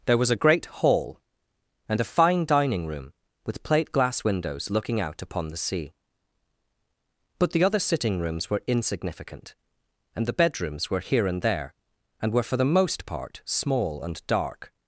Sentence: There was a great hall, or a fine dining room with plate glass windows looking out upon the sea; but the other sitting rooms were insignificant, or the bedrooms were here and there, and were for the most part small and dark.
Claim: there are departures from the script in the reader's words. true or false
true